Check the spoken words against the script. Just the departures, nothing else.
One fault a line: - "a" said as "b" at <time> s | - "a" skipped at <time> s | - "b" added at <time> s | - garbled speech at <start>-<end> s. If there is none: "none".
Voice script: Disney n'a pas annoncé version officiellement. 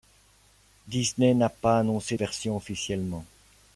none